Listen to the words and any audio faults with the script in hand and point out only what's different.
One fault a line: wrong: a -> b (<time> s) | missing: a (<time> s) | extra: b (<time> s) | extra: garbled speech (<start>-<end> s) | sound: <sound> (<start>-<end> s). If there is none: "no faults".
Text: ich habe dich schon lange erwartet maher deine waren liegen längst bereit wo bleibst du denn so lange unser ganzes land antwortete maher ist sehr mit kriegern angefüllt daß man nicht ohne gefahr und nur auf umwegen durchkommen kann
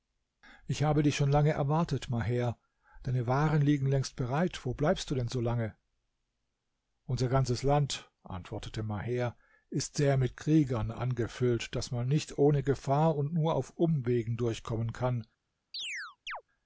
sound: chirp (15.7-16.4 s)